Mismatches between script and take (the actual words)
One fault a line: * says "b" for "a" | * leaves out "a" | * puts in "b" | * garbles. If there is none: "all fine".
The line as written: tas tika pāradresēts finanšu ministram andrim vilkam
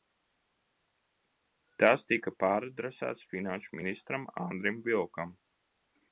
all fine